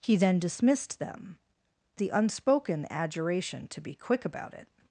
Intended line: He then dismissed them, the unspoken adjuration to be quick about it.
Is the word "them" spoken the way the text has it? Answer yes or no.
yes